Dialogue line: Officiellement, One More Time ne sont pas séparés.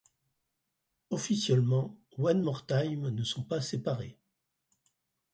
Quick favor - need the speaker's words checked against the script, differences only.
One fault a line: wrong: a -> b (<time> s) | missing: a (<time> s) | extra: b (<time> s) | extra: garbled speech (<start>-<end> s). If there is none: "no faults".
no faults